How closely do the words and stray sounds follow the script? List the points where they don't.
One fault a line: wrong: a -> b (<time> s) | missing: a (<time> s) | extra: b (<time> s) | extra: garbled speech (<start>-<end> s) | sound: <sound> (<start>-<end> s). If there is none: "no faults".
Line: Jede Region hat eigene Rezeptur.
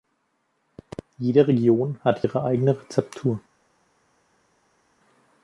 extra: ihre (2.2 s)